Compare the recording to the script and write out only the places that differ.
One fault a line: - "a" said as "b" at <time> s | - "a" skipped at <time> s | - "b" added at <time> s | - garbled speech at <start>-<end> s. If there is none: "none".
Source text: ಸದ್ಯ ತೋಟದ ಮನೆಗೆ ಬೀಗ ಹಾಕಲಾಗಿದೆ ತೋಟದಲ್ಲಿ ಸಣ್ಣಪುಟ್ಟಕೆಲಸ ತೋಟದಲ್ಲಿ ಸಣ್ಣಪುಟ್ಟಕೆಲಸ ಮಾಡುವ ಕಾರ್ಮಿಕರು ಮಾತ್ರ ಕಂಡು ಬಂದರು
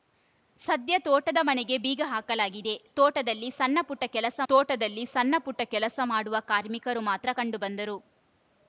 none